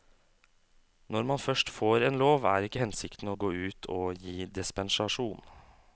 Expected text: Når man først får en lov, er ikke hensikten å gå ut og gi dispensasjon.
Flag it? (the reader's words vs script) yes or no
no